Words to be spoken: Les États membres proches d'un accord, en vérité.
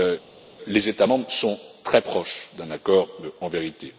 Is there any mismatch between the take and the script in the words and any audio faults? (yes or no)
yes